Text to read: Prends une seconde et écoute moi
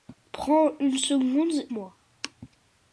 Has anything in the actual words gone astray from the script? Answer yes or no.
yes